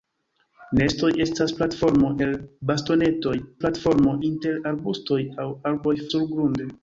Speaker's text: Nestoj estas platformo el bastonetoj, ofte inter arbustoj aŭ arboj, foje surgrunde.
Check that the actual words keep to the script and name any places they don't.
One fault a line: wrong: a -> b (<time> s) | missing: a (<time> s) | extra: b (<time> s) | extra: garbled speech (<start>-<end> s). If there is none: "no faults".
wrong: ofte -> platformo (3.6 s)
missing: foje (6.0 s)